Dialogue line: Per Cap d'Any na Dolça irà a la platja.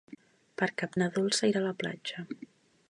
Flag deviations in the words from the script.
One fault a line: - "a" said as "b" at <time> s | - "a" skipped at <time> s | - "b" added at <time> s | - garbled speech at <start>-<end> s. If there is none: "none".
- "d'Any" skipped at 0.9 s